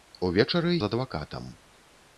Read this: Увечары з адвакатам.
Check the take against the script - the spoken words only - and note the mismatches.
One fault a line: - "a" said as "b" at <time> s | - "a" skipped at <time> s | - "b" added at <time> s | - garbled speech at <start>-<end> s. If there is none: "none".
none